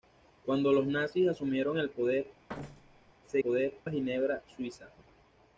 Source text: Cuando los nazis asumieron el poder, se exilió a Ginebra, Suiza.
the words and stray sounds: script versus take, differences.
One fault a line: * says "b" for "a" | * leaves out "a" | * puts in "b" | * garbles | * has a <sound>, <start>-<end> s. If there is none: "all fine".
* has a thud, 2.5-3.1 s
* says "poder" for "exilió"